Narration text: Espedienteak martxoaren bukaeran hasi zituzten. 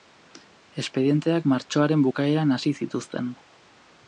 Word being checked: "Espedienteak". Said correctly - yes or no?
yes